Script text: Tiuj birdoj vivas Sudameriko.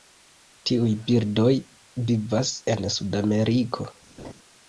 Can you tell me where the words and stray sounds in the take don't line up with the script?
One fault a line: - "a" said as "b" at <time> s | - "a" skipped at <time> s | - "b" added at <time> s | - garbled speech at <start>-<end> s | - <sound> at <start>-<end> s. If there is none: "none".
- "en" added at 2.8 s
- laugh at 4.2-4.3 s